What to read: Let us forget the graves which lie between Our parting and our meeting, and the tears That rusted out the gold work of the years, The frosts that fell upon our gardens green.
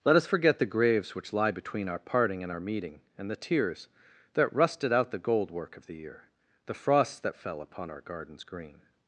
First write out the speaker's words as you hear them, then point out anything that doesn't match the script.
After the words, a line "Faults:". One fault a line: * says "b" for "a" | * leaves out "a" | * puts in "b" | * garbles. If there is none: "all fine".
Let us forget the graves which lie between Our parting and our meeting, and the tears That rusted out the gold work of the year, The frosts that fell upon our gardens green.
Faults:
* says "year" for "years"